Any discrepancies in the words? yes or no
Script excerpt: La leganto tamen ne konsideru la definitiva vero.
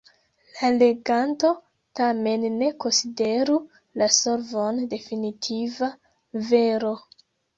yes